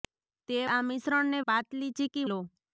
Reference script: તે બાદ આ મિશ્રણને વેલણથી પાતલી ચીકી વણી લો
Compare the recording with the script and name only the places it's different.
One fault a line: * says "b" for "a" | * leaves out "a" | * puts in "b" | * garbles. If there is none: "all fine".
* leaves out "બાદ"
* leaves out "વેલણથી"
* leaves out "વણી"